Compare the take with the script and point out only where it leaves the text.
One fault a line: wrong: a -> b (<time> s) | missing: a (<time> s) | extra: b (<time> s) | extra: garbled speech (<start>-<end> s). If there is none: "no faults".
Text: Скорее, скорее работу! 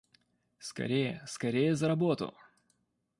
extra: за (1.8 s)